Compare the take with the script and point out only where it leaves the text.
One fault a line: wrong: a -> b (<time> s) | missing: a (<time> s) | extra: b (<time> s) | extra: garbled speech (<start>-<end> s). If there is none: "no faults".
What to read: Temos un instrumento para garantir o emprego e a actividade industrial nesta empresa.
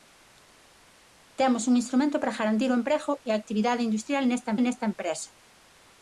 extra: nesta (4.6 s)